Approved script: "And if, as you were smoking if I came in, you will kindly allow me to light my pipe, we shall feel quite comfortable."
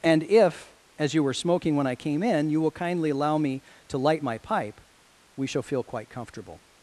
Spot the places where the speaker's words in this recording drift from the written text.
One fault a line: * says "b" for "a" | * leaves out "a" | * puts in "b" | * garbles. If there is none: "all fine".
* says "when" for "if"